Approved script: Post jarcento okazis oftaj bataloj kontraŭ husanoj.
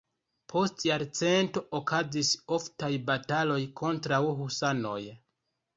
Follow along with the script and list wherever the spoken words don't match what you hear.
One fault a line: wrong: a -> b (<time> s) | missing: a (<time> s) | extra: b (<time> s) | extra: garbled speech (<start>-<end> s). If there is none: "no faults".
no faults